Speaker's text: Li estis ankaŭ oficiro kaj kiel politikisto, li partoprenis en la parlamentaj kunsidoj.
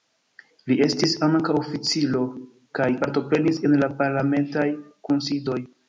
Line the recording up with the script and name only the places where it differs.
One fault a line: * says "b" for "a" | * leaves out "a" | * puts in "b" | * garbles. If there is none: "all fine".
* leaves out "kiel politikisto li"